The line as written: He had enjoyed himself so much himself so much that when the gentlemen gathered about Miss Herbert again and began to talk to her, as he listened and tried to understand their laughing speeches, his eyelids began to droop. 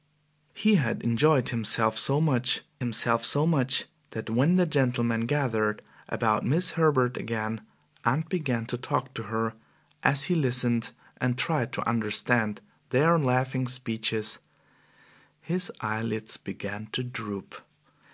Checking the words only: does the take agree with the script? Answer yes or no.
yes